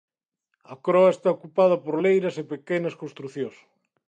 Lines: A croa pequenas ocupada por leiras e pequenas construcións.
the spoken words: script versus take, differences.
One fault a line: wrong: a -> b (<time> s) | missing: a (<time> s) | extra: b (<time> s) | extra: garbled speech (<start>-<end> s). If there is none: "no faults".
wrong: pequenas -> está (1.1 s)